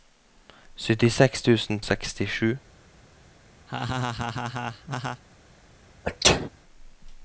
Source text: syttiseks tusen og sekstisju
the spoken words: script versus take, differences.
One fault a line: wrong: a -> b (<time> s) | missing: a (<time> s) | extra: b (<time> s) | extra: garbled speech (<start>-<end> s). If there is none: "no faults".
no faults